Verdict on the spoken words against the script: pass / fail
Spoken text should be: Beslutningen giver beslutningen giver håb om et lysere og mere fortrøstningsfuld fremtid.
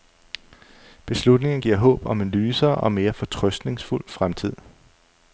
fail